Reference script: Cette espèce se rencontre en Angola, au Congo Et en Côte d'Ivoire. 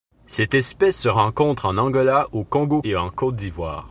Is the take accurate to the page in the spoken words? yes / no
yes